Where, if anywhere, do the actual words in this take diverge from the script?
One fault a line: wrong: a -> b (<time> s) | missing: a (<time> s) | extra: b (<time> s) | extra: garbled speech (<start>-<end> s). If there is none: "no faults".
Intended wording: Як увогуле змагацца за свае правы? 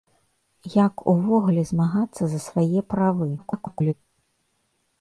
extra: garbled speech (3.4-3.9 s)